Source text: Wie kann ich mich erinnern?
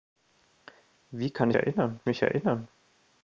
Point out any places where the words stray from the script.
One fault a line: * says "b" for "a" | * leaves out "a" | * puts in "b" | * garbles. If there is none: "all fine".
* says "erinnern" for "ich"